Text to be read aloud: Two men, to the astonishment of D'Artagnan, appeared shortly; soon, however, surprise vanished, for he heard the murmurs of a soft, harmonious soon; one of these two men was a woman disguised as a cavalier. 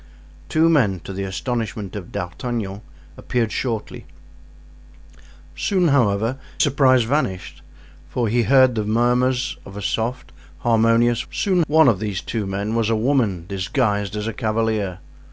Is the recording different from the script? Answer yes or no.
no